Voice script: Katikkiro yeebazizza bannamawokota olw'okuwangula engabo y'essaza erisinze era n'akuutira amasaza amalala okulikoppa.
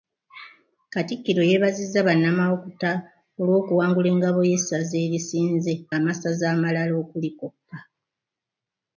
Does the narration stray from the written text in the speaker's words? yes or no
yes